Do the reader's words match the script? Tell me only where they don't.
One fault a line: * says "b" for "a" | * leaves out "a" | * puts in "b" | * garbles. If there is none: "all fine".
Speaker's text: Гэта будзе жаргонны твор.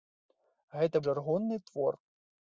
* leaves out "будзе"